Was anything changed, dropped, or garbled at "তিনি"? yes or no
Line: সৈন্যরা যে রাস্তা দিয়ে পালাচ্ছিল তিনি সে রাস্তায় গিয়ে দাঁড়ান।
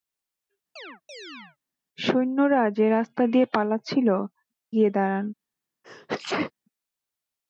yes